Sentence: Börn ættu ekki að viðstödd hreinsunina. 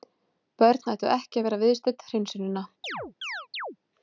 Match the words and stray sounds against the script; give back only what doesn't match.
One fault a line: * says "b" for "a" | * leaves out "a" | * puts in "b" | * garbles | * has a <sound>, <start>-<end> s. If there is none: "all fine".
* puts in "vera"
* has a chirp, 2.8-3.8 s